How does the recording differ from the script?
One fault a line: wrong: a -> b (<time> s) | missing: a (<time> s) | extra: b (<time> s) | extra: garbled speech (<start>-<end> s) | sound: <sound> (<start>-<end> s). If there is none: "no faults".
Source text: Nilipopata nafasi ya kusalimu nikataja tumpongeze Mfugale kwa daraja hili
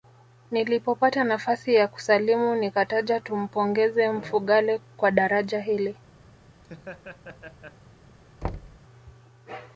sound: laugh (6.6-7.8 s)
sound: thud (8.4-8.8 s)